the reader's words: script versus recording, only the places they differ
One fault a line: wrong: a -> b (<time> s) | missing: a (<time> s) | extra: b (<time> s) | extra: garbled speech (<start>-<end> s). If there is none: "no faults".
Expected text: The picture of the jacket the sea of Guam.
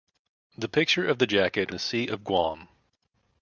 no faults